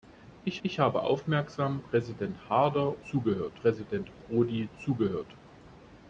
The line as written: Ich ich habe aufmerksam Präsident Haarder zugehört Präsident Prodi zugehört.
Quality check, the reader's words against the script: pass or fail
pass